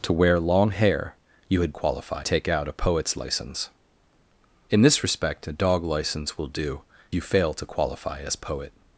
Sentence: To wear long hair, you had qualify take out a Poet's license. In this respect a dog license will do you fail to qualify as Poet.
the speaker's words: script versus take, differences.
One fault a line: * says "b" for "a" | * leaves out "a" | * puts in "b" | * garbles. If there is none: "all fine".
all fine